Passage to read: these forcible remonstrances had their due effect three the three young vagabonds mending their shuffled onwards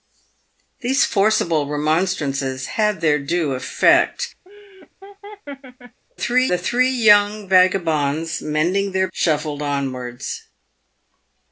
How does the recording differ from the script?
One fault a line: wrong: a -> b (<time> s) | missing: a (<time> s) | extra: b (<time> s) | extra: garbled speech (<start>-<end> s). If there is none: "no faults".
no faults